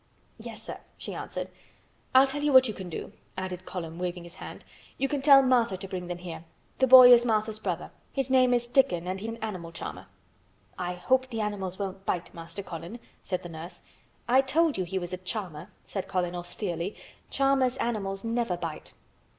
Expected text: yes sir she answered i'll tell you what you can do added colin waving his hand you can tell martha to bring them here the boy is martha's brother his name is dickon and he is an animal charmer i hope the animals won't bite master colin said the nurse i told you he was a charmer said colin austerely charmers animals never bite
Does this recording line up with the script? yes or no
no